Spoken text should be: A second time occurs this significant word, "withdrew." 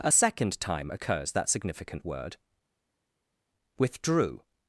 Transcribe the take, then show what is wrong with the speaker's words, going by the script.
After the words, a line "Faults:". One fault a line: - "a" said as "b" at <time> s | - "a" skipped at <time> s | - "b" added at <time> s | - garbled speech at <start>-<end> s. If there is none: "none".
A second time occurs that significant word, "withdrew."
Faults:
- "this" said as "that" at 1.3 s